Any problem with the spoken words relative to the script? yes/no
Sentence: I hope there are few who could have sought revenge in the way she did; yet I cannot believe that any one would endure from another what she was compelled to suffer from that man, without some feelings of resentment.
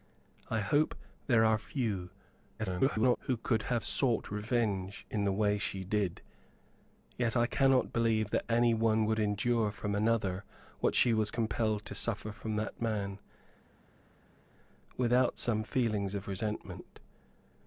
yes